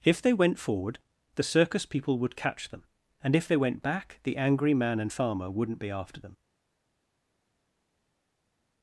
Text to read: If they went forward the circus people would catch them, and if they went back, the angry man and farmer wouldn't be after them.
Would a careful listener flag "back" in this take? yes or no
no